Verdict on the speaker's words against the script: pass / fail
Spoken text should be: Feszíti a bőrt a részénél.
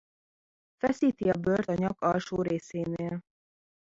fail